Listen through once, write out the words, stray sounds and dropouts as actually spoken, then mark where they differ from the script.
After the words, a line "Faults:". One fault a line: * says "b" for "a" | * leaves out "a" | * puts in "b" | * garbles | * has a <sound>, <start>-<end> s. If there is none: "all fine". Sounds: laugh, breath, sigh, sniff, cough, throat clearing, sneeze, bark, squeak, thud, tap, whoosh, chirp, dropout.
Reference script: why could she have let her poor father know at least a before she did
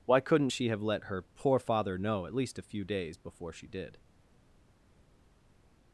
why couldn't she have let her poor father know at least a few days before she did
Faults:
* says "couldn't" for "could"
* puts in "few days"